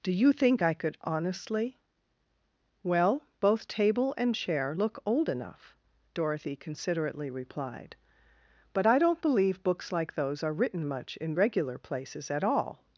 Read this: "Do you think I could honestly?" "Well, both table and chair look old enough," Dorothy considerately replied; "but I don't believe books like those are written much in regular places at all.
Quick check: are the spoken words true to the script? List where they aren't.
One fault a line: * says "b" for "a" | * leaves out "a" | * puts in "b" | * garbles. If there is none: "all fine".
all fine